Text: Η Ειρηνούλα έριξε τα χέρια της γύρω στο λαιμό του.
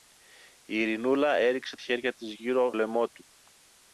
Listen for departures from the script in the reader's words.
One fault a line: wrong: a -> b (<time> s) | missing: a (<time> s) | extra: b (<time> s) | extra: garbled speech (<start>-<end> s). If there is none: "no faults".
missing: τα (1.8 s)
missing: στο (2.7 s)